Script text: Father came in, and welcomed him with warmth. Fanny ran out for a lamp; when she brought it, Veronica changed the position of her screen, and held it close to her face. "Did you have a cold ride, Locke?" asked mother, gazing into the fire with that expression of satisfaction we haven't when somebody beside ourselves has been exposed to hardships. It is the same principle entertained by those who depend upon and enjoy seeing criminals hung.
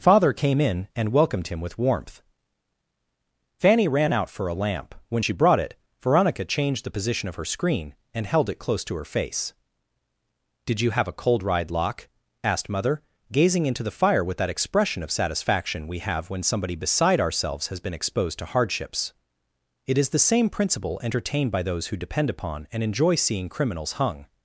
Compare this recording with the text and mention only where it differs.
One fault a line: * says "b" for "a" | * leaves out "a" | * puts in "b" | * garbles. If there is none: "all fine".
* says "have" for "haven't"